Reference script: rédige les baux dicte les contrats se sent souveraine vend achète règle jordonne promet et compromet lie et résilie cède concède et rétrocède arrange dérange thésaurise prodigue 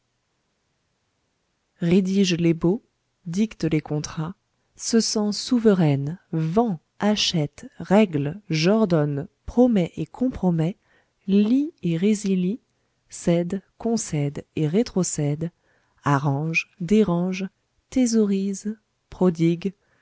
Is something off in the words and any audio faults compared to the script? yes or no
no